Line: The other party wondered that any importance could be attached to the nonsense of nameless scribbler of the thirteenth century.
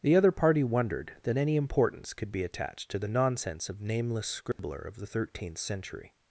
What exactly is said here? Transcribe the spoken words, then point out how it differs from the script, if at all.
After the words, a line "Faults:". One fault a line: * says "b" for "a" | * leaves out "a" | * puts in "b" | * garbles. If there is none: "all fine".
The other party wondered that any importance could be attached to the nonsense of nameless scribbler of the thirteenth century.
Faults:
all fine